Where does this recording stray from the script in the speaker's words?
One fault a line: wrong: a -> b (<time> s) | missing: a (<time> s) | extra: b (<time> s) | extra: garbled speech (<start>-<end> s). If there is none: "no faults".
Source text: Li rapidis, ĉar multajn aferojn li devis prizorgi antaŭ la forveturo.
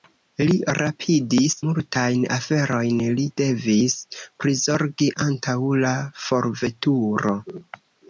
missing: ĉar (1.6 s)